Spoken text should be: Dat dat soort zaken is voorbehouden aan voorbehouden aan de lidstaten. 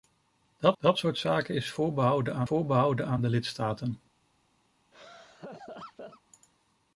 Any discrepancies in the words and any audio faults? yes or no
yes